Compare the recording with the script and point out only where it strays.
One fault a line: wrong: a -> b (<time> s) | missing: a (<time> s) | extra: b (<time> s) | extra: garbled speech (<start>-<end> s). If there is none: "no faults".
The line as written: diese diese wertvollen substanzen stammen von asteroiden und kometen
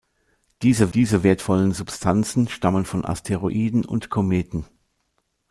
no faults